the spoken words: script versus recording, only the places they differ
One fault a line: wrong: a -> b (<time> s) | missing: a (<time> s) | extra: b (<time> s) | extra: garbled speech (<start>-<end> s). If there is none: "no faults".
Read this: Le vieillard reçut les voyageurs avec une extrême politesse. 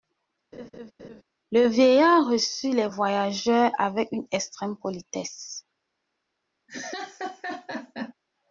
no faults